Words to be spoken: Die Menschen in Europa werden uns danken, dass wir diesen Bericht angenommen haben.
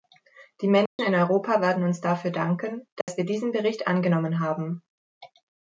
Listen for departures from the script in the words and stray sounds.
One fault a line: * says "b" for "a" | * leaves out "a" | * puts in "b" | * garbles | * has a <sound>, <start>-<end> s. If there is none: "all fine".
* has a dropout, 0.9-1.0 s
* puts in "dafür"
* has a dropout, 3.0-3.1 s